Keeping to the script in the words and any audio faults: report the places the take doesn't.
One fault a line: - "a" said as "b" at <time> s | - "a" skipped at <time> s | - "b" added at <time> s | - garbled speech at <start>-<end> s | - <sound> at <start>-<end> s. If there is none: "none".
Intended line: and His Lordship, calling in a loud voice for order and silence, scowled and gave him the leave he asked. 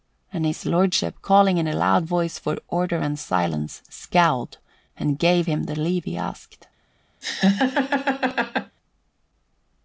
- laugh at 7.2-8.8 s